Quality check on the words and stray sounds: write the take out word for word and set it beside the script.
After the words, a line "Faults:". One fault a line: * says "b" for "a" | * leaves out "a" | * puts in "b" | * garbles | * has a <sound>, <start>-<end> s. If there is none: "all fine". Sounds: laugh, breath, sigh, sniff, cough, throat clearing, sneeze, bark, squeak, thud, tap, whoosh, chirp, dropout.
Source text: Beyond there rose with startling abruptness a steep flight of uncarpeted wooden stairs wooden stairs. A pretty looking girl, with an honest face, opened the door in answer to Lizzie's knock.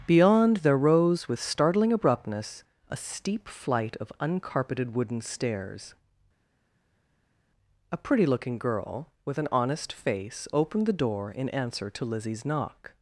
Beyond there rose with startling abruptness a steep flight of uncarpeted wooden stairs. A pretty looking girl, with an honest face, opened the door in answer to Lizzie's knock.
Faults:
* leaves out "wooden stairs"